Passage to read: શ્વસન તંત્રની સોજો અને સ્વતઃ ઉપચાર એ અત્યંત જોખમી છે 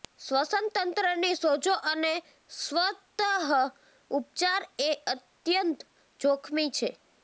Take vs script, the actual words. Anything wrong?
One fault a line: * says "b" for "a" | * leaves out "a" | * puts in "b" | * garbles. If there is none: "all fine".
all fine